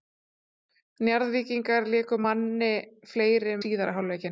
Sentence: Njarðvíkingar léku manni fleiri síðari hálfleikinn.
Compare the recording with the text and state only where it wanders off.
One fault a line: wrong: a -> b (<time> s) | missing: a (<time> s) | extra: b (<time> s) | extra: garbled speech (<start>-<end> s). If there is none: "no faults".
no faults